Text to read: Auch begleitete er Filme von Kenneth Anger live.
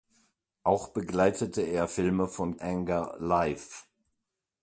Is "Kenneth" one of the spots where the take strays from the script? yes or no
yes